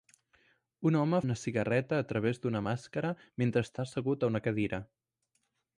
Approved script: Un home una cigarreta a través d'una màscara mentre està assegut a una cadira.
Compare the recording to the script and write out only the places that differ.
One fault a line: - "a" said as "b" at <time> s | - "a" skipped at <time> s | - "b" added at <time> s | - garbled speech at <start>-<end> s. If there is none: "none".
none